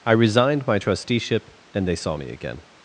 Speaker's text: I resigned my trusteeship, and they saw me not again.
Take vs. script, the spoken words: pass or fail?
fail